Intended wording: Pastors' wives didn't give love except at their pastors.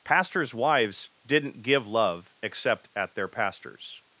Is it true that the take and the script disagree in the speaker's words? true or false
false